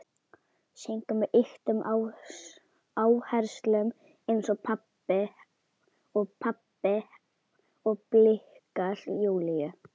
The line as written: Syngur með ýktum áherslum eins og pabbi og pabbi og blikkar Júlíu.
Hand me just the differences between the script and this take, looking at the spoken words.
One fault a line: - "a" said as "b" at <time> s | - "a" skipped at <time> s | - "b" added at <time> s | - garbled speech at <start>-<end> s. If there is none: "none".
none